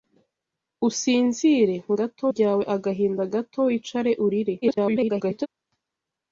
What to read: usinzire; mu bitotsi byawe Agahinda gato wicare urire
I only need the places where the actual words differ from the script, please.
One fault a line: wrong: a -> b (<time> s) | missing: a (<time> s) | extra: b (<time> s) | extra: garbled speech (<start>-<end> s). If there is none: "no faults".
wrong: bitotsi -> gato (2.0 s)
extra: garbled speech (4.6-5.5 s)